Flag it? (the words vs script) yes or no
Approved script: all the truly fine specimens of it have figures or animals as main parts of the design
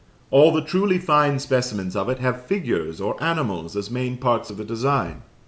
no